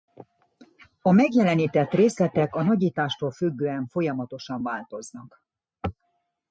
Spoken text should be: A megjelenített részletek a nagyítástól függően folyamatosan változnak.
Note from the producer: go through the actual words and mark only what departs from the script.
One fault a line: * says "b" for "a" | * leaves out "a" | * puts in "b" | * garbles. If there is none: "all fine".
all fine